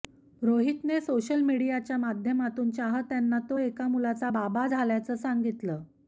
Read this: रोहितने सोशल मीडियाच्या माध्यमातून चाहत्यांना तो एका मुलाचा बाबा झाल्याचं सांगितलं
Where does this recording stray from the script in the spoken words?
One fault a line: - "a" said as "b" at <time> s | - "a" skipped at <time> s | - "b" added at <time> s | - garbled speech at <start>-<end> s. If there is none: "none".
none